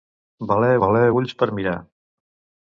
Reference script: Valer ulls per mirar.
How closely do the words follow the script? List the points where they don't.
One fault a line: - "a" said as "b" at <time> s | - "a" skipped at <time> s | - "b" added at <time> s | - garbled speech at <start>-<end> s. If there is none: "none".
- "valer" added at 0.8 s